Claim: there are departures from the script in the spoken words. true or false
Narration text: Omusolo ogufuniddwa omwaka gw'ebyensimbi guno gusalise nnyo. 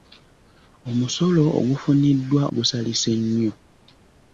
true